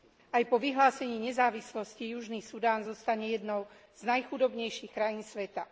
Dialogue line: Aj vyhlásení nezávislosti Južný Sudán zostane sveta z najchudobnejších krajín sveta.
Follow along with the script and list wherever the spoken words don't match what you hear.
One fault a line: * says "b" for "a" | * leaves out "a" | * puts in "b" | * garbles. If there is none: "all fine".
* puts in "po"
* says "jednou" for "sveta"